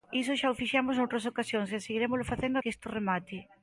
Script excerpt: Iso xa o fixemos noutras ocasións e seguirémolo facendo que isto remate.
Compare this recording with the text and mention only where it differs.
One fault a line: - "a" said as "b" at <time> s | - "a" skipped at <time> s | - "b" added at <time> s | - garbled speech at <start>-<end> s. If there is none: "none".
none